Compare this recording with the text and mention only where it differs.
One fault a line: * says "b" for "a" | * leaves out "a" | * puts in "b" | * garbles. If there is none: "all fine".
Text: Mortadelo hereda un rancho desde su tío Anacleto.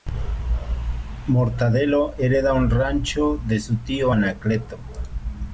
* says "de" for "desde"